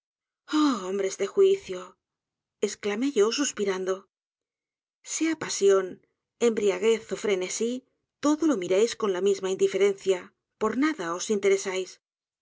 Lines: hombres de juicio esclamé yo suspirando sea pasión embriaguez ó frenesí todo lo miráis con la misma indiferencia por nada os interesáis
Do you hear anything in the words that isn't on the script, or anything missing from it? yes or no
no